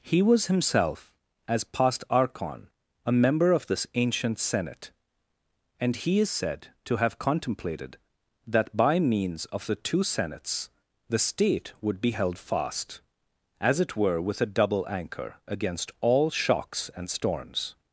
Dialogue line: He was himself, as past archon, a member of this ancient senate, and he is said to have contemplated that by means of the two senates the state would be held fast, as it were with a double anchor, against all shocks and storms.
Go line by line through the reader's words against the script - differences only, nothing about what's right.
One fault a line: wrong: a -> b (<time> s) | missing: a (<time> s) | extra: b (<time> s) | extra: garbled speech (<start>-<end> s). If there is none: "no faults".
no faults